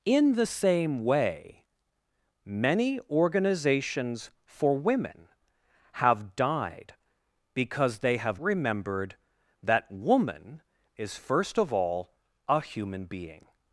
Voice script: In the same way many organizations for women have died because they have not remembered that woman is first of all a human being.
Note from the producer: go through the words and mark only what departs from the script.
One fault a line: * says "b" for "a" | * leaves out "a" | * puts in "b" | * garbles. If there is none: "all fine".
* leaves out "not"